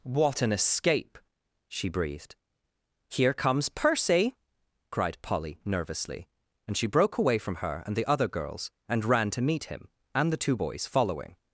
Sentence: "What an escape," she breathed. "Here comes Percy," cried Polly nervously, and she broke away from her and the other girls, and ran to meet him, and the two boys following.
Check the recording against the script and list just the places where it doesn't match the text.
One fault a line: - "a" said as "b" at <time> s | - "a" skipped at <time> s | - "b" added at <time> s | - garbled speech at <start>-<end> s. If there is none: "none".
none